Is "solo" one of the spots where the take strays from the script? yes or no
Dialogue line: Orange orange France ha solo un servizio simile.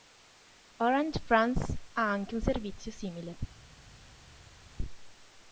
yes